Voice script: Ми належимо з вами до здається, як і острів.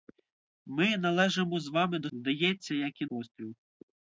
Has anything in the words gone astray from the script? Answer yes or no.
no